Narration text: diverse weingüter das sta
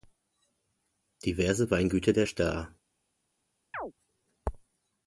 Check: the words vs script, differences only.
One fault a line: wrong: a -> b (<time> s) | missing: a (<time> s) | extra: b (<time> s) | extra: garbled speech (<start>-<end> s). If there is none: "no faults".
wrong: das -> der (2.1 s)